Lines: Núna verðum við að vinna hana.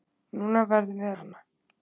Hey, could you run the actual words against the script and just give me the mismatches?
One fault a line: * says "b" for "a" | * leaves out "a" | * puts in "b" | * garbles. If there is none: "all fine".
* leaves out "að vinna"